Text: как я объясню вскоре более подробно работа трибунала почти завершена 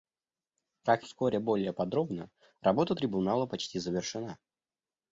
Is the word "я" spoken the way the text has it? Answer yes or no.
no